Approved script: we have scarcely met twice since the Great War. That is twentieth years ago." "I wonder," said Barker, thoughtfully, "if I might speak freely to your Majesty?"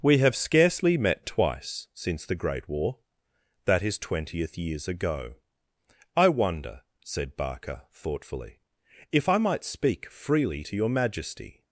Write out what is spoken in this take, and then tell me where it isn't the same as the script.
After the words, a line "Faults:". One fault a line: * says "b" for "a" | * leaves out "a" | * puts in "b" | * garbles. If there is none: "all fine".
we have scarcely met twice since the Great War. That is twentieth years ago." "I wonder," said Barker, thoughtfully, "if I might speak freely to your Majesty?"
Faults:
all fine